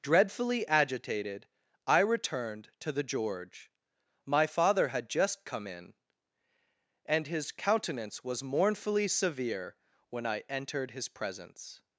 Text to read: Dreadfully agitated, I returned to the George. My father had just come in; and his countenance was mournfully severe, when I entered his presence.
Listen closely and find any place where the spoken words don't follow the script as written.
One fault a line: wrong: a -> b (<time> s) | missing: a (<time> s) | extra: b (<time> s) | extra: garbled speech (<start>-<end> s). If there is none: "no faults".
no faults